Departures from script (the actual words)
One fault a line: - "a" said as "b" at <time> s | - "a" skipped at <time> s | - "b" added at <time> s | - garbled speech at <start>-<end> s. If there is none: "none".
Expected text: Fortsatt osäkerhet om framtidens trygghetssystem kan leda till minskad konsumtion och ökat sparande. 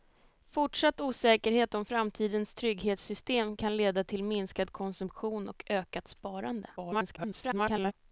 - garbled speech at 6.8-7.9 s